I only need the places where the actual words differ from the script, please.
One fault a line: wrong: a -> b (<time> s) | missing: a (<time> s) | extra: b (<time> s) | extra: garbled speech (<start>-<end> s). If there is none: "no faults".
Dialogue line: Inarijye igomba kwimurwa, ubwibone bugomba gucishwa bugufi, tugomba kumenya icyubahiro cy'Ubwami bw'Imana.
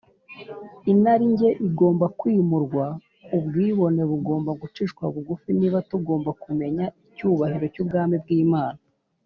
extra: niba (5.6 s)